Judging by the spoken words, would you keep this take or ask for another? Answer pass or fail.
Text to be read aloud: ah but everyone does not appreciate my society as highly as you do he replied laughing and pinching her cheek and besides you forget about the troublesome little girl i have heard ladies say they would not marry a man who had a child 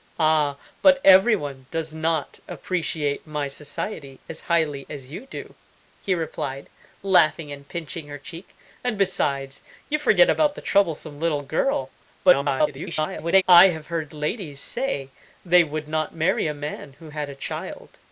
fail